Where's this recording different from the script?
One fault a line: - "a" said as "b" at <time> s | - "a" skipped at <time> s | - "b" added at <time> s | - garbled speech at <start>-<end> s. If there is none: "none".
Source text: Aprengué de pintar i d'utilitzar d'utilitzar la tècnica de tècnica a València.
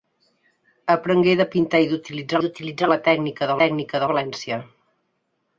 none